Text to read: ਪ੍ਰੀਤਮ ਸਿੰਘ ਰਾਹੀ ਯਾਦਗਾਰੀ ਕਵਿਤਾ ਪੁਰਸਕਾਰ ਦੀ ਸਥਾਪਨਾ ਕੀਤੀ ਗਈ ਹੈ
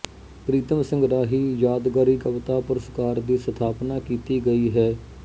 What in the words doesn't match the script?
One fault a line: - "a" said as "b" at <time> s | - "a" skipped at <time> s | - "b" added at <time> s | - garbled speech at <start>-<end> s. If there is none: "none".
none